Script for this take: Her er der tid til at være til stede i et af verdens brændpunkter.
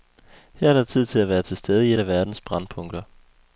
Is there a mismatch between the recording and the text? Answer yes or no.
no